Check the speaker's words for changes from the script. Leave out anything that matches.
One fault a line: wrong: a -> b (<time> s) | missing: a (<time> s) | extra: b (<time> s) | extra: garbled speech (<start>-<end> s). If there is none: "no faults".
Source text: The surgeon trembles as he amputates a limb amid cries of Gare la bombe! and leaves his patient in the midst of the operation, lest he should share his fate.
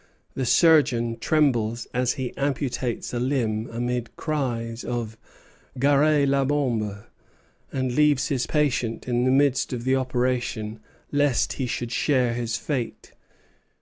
no faults